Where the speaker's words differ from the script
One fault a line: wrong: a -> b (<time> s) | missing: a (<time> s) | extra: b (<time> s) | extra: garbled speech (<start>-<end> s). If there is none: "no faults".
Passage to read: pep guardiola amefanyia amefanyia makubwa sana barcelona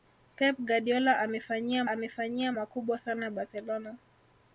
no faults